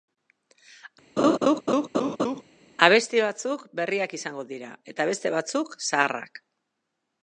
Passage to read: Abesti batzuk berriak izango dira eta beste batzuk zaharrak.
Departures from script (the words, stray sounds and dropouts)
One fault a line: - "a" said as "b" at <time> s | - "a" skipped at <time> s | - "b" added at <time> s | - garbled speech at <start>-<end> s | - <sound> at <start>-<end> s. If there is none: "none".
- laugh at 1.2-2.4 s